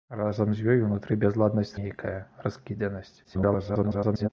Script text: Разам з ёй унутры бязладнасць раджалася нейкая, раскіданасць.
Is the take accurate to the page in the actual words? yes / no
no